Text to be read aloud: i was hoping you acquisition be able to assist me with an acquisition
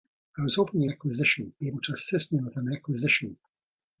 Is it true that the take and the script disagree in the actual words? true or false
false